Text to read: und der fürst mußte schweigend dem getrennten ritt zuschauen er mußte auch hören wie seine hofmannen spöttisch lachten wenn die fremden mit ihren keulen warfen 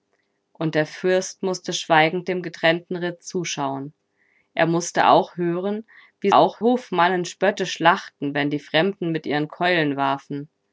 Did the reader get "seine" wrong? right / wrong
wrong